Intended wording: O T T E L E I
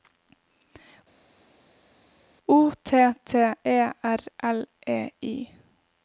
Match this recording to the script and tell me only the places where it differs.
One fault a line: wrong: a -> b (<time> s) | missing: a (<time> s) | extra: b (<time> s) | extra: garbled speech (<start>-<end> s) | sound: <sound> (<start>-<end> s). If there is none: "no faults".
extra: R (4.0 s)